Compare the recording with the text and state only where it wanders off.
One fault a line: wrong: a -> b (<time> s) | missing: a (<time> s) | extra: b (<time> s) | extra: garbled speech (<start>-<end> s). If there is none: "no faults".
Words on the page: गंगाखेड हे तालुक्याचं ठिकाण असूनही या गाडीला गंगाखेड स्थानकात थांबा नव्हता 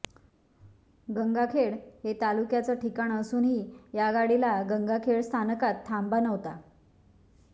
no faults